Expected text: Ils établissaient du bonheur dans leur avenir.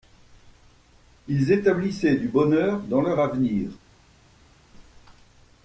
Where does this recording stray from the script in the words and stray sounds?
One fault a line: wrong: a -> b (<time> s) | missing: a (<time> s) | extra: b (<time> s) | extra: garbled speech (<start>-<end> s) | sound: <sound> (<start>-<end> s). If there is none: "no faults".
no faults